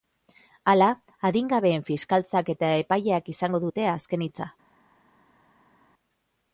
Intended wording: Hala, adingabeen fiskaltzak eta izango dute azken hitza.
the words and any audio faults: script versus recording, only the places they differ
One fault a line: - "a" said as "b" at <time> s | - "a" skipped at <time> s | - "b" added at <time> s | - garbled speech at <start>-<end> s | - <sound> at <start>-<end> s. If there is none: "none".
- "epaileak" added at 2.9 s